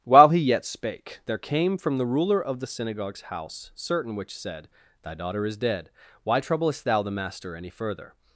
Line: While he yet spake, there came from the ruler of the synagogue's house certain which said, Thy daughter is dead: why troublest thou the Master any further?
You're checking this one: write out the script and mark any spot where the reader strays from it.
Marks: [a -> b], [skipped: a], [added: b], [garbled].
While he yet spake, there came from the ruler of the synagogue's house certain which said, Thy daughter is dead: why troublest thou the Master any further?